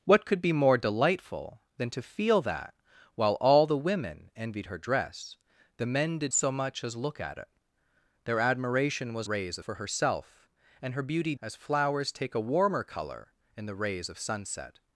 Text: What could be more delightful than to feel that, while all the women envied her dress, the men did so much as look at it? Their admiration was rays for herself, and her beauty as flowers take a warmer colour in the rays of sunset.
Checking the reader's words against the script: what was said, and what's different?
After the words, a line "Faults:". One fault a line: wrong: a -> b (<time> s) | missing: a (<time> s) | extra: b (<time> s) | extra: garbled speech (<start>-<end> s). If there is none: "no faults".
What could be more delightful than to feel that, while all the women envied her dress, the men did so much as look at it? Their admiration was rays for herself, and her beauty as flowers take a warmer colour in the rays of sunset.
Faults:
no faults